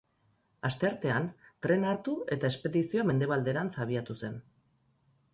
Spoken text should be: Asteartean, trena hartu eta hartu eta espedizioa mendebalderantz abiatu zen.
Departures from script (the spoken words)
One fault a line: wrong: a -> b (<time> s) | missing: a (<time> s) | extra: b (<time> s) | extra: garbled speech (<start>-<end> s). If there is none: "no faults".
missing: hartu eta (2.5 s)